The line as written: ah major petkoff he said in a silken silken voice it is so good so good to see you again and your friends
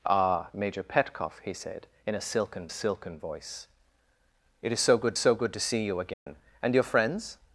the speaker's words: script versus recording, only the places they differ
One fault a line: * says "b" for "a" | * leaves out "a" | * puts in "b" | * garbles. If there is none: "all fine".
all fine